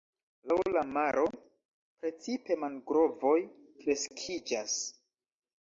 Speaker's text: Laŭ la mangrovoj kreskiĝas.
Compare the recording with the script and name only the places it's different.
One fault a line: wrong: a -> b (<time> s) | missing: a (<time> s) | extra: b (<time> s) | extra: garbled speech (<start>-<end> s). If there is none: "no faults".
extra: maro precipe (1.0 s)